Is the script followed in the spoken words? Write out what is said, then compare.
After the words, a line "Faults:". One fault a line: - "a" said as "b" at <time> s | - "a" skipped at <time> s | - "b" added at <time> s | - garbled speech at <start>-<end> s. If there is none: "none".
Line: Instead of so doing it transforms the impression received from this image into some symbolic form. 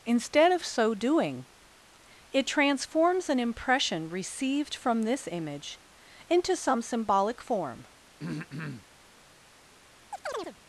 Instead of so doing it transforms an impression received from this image into some symbolic form.
Faults:
- "the" said as "an" at 3.3 s